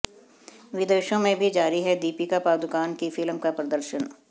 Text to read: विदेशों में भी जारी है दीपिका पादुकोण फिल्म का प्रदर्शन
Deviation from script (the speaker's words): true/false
true